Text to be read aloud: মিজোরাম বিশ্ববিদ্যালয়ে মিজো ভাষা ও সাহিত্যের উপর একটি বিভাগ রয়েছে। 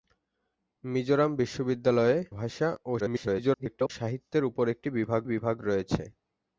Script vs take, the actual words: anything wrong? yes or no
yes